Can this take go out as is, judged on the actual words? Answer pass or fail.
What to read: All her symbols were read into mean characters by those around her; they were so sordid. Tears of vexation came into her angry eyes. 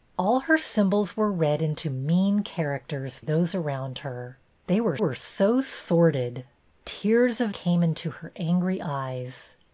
fail